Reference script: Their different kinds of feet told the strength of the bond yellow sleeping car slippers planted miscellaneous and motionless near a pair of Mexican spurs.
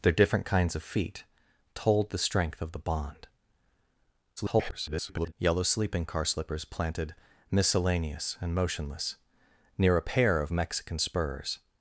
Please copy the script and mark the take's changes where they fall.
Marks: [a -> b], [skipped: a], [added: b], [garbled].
Their different kinds of feet told the strength of the bond [garbled] yellow sleeping car slippers planted miscellaneous and motionless near a pair of Mexican spurs.